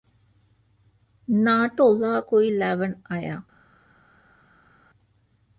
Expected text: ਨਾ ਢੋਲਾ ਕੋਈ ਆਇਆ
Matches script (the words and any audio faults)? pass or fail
fail